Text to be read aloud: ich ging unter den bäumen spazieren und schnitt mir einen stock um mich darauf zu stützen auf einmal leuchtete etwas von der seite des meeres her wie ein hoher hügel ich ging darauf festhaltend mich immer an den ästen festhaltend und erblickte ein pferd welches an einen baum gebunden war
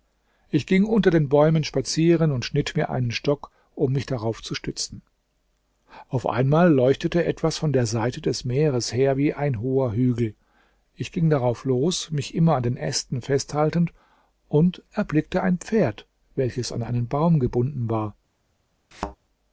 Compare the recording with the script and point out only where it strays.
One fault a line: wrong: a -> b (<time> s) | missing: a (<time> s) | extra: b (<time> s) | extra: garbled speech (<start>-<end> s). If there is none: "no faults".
wrong: festhaltend -> los (11.6 s)